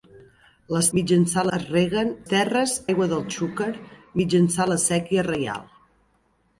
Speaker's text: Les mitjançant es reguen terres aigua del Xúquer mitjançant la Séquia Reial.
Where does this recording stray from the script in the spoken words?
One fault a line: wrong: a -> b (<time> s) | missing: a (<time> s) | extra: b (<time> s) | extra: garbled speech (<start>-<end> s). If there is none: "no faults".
no faults